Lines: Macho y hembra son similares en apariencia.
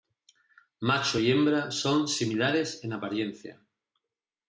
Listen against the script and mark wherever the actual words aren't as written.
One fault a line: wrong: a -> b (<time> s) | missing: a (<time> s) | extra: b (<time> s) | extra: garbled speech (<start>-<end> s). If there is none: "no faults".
no faults